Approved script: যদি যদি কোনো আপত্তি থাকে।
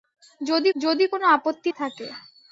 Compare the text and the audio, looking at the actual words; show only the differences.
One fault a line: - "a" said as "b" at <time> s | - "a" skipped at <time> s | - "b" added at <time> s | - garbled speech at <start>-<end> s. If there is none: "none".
none